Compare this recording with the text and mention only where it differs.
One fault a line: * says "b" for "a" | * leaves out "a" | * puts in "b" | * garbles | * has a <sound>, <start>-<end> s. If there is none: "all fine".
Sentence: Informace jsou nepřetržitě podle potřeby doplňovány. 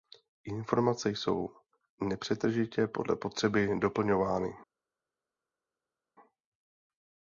all fine